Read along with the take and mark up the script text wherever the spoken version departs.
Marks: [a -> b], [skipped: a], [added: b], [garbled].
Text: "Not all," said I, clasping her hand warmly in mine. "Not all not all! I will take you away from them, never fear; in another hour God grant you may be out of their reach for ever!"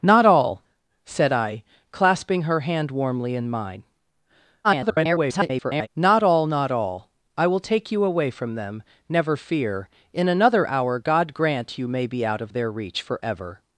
"Not all," said I, clasping her hand warmly in mine. [garbled] "Not all not all! I will take you away from them, never fear; in another hour God grant you may be out of their reach for ever!"